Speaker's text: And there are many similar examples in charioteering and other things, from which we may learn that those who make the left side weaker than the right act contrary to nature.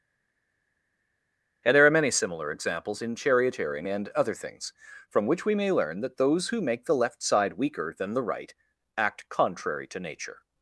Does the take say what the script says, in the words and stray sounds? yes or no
yes